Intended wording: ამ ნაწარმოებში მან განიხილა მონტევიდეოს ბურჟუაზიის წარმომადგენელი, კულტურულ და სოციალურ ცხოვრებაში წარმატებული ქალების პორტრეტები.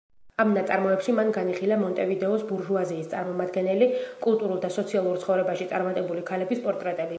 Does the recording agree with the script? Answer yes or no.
yes